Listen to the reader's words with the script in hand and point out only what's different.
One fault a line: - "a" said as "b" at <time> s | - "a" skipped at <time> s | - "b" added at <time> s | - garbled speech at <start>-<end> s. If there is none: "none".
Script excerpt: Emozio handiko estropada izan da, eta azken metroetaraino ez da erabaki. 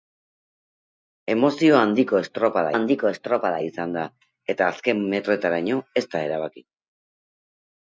- "handiko estropada" added at 2.7 s